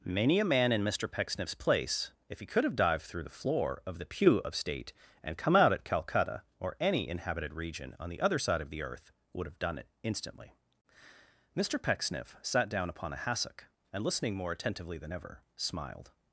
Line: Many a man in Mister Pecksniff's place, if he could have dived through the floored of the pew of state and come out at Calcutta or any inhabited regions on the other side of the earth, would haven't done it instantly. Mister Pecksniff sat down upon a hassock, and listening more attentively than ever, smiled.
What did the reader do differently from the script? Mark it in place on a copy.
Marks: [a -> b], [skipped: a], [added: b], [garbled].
Many a man in Mister Pecksniff's place, if he could have dived through the [floored -> floor] of the pew of state and come out at Calcutta or any inhabited [regions -> region] on the other side of the earth, would [haven't -> have] done it instantly. Mister Pecksniff sat down upon a hassock, and listening more attentively than ever, smiled.